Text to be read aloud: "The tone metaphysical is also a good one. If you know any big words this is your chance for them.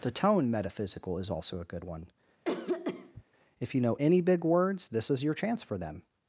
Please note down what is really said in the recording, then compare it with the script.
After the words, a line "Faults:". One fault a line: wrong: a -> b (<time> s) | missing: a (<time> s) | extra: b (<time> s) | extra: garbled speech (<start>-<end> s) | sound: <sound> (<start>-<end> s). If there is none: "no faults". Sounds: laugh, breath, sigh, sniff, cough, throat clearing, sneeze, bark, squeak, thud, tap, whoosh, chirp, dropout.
"The tone metaphysical is also a good one. If you know any big words this is your chance for them.
Faults:
sound: cough (2.4-3.2 s)